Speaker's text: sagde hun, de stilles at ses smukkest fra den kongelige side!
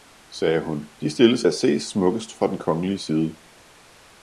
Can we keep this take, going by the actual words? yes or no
yes